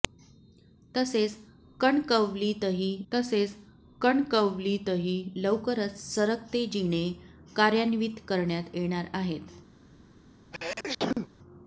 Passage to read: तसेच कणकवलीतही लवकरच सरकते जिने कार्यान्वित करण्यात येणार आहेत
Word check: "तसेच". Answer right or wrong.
right